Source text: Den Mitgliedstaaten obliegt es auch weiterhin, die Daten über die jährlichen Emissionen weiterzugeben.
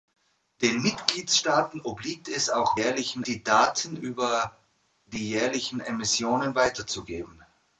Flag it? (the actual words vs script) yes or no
yes